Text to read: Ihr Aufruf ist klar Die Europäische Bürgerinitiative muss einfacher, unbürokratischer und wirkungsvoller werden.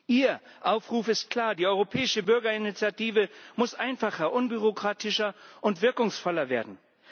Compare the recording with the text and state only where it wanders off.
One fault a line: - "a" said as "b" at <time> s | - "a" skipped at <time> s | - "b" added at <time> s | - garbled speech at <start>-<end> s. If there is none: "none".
none